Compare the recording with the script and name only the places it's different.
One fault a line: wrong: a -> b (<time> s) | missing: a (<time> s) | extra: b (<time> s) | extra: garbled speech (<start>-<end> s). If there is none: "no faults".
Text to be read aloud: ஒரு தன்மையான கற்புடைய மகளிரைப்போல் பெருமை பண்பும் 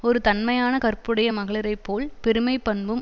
no faults